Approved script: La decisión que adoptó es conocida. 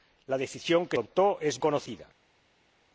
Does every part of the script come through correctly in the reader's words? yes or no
yes